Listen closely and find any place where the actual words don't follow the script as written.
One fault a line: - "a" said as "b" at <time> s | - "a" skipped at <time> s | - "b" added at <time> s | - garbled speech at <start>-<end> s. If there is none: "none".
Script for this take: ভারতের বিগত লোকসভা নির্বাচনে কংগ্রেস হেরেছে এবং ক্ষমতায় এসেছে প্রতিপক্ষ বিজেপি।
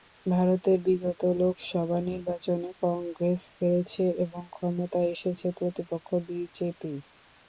none